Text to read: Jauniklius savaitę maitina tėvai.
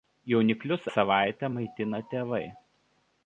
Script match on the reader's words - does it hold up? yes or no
yes